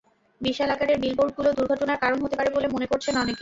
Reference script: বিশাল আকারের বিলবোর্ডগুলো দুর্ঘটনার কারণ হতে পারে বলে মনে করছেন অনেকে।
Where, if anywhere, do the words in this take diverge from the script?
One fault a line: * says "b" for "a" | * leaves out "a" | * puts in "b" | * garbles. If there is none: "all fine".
all fine